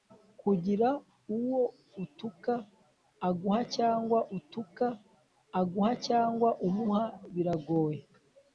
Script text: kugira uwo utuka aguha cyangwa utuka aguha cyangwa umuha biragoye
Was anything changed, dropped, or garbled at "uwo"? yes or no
no